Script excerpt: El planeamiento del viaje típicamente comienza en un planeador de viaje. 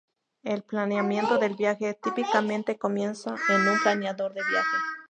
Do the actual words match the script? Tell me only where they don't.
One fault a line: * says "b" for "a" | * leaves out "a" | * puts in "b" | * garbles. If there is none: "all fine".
all fine